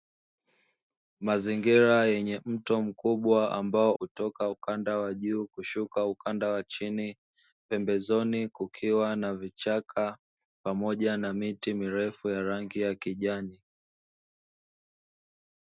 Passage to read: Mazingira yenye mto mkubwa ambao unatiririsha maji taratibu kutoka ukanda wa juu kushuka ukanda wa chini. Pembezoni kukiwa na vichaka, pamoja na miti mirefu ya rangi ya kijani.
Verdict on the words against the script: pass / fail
fail